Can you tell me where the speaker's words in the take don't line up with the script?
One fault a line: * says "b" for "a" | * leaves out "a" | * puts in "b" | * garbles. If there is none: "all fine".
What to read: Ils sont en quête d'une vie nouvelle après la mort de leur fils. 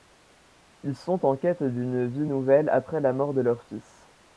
all fine